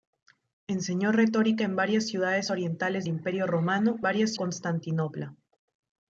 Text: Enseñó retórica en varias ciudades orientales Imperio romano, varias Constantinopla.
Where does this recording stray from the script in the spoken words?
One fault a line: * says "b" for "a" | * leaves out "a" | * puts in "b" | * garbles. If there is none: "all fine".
all fine